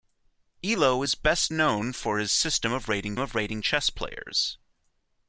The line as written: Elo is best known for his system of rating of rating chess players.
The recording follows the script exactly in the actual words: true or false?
true